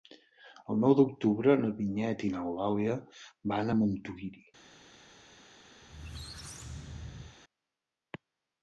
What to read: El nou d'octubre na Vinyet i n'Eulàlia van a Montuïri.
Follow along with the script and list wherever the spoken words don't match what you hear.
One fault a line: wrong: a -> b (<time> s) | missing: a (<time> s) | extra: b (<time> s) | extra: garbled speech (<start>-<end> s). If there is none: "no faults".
no faults